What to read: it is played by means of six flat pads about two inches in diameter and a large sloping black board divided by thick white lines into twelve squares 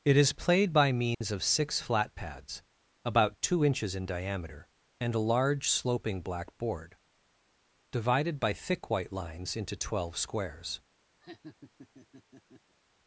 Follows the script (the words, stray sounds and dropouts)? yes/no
no